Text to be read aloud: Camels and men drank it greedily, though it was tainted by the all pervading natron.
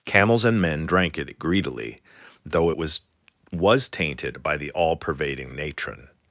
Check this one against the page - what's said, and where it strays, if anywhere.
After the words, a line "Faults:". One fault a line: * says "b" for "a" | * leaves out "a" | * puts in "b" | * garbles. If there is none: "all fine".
Camels and men drank it greedily, though it was was tainted by the all pervading natron.
Faults:
* puts in "was"